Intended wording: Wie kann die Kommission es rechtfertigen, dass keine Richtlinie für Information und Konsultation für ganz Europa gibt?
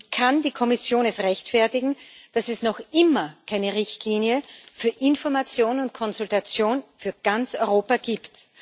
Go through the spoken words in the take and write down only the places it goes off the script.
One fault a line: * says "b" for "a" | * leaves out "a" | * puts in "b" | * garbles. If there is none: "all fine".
* puts in "es noch immer"